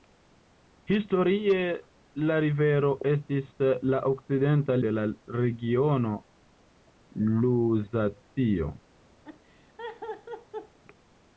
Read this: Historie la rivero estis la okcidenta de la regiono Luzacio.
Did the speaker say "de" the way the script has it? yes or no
yes